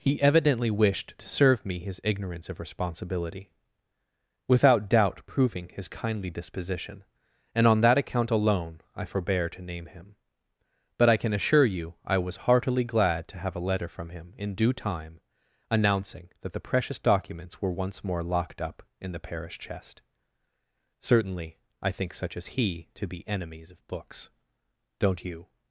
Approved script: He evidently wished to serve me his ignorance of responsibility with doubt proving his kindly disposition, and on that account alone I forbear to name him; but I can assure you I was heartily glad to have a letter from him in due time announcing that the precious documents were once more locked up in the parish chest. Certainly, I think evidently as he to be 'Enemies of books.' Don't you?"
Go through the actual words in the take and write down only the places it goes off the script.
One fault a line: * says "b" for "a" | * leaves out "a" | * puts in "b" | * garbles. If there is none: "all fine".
* says "without" for "with"
* says "such" for "evidently"